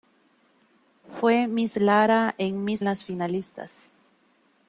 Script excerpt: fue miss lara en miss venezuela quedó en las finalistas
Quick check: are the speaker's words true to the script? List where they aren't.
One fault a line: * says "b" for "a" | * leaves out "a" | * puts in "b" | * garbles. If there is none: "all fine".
* leaves out "venezuela quedó en"